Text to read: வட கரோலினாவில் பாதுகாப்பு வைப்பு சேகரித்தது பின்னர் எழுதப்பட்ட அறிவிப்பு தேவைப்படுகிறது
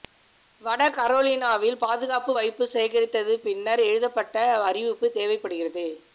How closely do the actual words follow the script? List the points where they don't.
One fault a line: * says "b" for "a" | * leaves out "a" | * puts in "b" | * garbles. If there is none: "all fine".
all fine